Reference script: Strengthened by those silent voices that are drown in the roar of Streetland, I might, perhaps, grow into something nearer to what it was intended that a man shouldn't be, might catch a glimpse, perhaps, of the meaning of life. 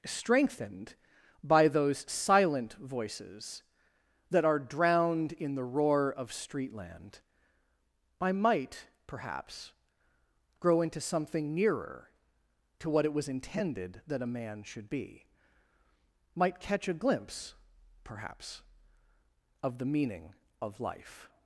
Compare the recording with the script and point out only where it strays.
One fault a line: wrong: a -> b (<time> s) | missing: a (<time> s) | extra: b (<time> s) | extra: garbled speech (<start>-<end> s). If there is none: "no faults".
wrong: drown -> drowned (4.6 s)
wrong: shouldn't -> should (14.6 s)